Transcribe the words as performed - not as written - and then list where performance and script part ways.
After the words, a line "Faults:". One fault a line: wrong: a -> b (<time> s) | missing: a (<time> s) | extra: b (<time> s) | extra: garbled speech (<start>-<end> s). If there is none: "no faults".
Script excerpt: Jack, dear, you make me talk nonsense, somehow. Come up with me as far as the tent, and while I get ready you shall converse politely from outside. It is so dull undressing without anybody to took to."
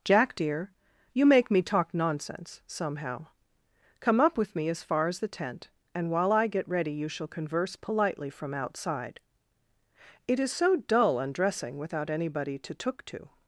Jack, dear, you make me talk nonsense, somehow. Come up with me as far as the tent, and while I get ready you shall converse politely from outside. It is so dull undressing without anybody to took to."
Faults:
no faults